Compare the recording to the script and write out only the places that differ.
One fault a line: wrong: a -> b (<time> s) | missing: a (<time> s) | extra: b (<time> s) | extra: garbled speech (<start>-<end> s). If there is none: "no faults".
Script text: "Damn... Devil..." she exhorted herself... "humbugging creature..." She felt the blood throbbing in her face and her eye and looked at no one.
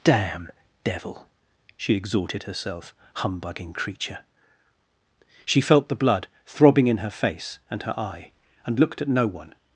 no faults